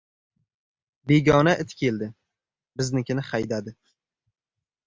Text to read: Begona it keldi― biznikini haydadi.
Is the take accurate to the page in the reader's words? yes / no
yes